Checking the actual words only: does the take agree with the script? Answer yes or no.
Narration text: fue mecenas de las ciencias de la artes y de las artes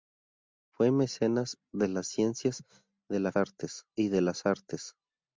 yes